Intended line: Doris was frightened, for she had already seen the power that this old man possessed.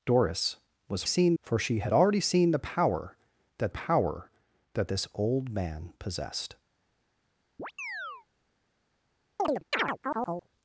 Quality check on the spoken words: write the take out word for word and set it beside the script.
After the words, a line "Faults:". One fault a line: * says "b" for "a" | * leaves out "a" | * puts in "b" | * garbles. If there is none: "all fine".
Doris was seen, for she had already seen the power that power that this old man possessed.
Faults:
* says "seen" for "frightened"
* puts in "power that"